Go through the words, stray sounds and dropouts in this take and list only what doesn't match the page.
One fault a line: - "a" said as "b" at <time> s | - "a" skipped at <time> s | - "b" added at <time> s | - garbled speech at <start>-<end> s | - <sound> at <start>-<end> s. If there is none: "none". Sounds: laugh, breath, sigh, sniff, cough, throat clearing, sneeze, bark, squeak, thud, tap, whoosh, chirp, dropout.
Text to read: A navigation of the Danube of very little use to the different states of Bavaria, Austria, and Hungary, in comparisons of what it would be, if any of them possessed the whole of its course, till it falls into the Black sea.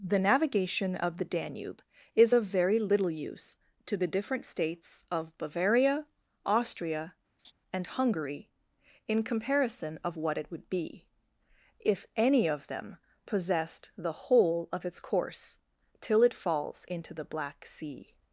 - "A" said as "The" at 0.0 s
- "is" added at 2.1 s
- laugh at 7.4-7.5 s
- "comparisons" said as "comparison" at 9.2 s